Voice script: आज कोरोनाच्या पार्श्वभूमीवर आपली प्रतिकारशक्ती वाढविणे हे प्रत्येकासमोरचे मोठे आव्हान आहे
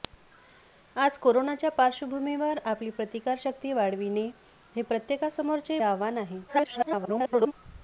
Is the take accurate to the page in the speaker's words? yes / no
no